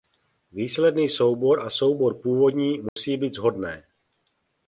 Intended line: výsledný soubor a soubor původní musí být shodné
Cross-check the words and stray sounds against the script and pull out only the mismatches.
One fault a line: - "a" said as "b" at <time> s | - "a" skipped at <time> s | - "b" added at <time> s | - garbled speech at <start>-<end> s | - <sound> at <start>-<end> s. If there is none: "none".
- dropout at 2.9-3.0 s